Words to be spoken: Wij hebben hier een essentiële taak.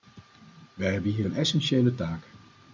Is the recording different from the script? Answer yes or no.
no